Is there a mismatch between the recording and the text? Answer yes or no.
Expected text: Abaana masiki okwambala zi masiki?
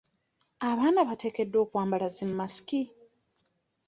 yes